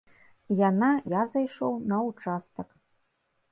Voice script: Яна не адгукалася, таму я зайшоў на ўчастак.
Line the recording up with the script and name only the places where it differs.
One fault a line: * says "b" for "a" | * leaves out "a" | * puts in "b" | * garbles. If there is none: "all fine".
* leaves out "не адгукалася таму"